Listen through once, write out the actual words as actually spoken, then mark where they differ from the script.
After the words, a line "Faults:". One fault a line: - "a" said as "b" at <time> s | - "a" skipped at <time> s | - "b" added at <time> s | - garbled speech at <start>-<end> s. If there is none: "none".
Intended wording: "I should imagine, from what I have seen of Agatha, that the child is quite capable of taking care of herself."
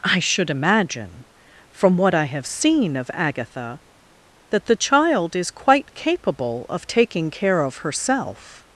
"I should imagine, from what I have seen of Agatha, that the child is quite capable of taking care of herself."
Faults:
none